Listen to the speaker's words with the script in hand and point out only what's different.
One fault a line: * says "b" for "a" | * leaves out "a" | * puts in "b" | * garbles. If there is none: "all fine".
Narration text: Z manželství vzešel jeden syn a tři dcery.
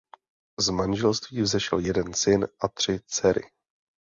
all fine